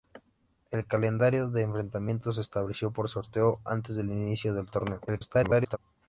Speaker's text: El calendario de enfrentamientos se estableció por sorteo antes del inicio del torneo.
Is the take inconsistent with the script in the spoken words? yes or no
yes